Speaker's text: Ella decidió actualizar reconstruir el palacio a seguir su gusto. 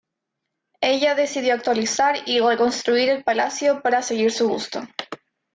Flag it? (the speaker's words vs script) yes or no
yes